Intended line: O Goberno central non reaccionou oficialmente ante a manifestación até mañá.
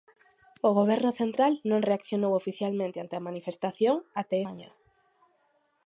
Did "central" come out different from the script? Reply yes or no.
no